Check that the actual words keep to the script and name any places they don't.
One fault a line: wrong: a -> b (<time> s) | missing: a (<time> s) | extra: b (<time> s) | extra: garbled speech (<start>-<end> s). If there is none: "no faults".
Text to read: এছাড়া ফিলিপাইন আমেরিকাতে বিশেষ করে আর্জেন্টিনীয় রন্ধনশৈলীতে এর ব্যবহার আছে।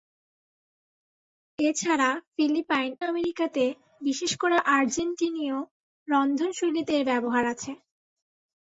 no faults